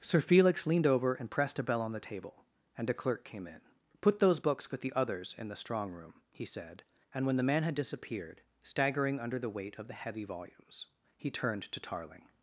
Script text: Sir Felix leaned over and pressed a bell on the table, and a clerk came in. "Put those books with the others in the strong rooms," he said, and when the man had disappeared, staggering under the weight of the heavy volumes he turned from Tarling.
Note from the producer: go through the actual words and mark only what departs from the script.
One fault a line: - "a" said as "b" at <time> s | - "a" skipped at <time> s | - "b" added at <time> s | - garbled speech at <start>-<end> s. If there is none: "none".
- "rooms" said as "room" at 5.9 s
- "from" said as "to" at 11.6 s